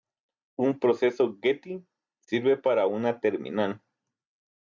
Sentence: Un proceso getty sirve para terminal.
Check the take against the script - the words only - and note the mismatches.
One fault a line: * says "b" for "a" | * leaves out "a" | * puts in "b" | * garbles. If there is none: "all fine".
* puts in "una"